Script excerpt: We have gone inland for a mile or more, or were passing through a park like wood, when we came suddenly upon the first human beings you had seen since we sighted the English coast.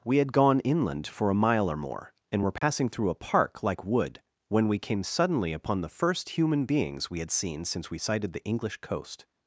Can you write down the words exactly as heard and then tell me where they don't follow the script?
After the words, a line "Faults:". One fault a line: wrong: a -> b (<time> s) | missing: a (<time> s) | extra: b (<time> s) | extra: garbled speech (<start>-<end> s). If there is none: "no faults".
We had gone inland for a mile or more, and were passing through a park like wood, when we came suddenly upon the first human beings we had seen since we sighted the English coast.
Faults:
wrong: have -> had (0.2 s)
wrong: or -> and (2.3 s)
wrong: you -> we (7.1 s)